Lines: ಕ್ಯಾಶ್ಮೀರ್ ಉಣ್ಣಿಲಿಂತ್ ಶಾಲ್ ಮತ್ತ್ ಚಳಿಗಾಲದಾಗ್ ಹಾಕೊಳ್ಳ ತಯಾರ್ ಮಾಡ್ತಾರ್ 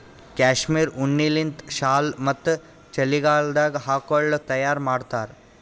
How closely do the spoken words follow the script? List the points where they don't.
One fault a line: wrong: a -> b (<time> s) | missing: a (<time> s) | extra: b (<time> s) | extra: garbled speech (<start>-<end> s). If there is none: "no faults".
no faults